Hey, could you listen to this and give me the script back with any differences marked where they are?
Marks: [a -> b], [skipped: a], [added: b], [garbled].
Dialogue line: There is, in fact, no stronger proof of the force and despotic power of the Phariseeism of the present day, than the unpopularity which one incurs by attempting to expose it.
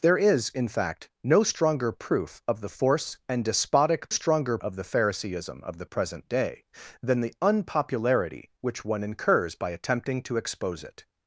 There is, in fact, no stronger proof of the force and despotic [power -> stronger] of the Phariseeism of the present day, than the unpopularity which one incurs by attempting to expose it.